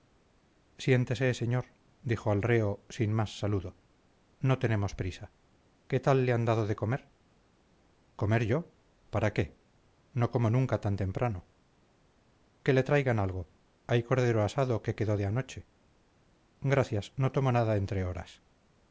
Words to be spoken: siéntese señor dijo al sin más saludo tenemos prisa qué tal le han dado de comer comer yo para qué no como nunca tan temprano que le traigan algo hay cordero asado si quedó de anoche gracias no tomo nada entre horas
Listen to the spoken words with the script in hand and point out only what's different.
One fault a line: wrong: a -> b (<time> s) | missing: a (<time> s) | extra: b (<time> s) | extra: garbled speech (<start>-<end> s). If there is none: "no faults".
extra: reo (2.4 s)
extra: no (4.4 s)
wrong: si -> que (14.8 s)